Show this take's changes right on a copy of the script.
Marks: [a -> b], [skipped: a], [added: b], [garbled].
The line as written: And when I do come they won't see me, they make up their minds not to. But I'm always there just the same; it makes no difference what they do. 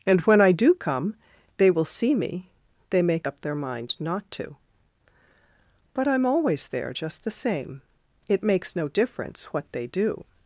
And when I do come they [won't -> will] see me, they make up their [minds -> mind] not to. But I'm always there just the same; it makes no difference what they do.